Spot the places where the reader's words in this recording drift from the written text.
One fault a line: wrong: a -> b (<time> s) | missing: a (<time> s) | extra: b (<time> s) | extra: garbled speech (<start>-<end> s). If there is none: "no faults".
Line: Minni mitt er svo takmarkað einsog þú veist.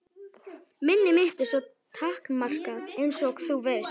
no faults